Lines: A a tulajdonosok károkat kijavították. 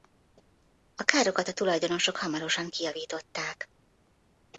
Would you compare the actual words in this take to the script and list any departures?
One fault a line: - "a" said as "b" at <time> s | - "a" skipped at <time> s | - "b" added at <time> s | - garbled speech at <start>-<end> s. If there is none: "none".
- "károkat" added at 1.0 s
- "károkat" said as "hamarosan" at 2.2 s